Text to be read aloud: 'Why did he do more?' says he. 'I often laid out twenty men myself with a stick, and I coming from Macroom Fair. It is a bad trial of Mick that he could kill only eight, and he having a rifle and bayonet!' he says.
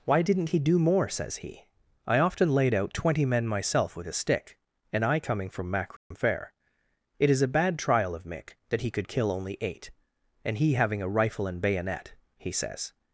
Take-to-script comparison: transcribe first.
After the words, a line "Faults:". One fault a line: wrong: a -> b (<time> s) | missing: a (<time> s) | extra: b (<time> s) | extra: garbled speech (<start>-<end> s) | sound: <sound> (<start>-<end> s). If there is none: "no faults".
'Why didn't he do more?' says he. 'I often laid out twenty men myself with a stick, and I coming from Macroom Fair. It is a bad trial of Mick that he could kill only eight, and he having a rifle and bayonet!' he says.
Faults:
wrong: did -> didn't (0.2 s)
sound: dropout (6.0-6.1 s)